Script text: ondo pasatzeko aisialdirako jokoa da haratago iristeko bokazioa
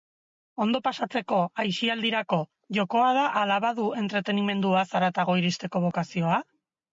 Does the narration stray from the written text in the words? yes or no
yes